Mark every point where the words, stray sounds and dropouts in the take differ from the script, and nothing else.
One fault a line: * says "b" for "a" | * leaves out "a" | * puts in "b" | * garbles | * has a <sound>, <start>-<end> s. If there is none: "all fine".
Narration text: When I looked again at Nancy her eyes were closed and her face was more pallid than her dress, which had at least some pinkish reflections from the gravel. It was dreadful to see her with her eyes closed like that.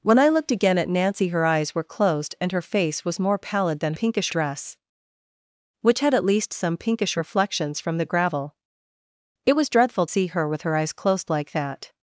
* says "pinkish" for "her"
* leaves out "to"